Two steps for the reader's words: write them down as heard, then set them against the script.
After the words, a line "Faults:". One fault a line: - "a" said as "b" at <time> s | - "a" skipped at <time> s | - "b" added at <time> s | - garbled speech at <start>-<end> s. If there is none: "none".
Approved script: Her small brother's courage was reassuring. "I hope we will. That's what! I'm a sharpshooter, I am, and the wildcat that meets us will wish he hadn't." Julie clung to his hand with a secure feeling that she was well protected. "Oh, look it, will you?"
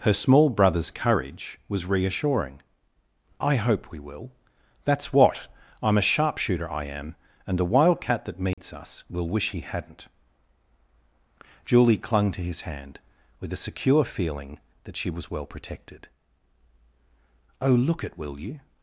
Her small brother's courage was reassuring. "I hope we will. That's what! I'm a sharpshooter, I am, and the wildcat that meets us will wish he hadn't." Julie clung to his hand with a secure feeling that she was well protected. "Oh, look it, will you?"
Faults:
none